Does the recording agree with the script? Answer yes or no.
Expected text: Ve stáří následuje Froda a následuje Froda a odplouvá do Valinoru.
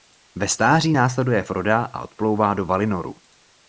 no